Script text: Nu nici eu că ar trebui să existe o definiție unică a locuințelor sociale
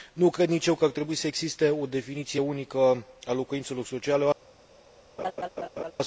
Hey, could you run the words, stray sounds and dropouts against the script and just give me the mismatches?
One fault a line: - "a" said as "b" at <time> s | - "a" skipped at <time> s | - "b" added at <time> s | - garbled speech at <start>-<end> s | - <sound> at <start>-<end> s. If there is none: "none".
- "cred" added at 0.3 s
- laugh at 5.2-5.9 s